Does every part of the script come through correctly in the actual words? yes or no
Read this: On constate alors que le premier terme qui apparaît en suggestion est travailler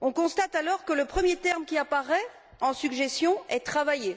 yes